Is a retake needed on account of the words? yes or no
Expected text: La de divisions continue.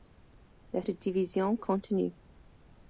no